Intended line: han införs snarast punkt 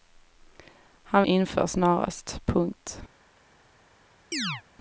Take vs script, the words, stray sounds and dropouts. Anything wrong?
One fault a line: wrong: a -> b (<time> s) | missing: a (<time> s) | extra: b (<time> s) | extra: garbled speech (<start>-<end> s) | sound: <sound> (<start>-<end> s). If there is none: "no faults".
sound: chirp (4.3-4.6 s)